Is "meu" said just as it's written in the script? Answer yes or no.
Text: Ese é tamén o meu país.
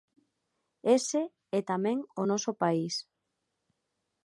no